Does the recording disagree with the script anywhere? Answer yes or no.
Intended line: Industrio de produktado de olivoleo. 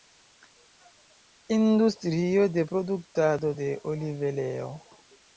no